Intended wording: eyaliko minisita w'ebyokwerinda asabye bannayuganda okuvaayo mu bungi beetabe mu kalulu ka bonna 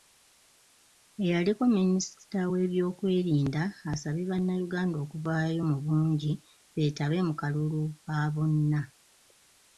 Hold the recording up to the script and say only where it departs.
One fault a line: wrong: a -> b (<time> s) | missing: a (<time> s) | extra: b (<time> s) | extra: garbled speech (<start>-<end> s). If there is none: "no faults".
no faults